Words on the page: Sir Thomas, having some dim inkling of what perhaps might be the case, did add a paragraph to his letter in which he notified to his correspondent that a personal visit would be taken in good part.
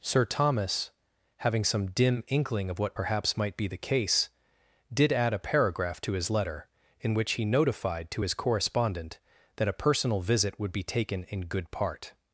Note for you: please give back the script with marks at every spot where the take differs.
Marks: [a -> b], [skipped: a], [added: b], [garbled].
Sir Thomas, having some dim inkling of what perhaps might be the case, did add a paragraph to his letter in which he notified to his correspondent that a personal visit would be taken in good part.